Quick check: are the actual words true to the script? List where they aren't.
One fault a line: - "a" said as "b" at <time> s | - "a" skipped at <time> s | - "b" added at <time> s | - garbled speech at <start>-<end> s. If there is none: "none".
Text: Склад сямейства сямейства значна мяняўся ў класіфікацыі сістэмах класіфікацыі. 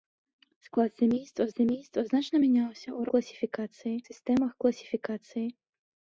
none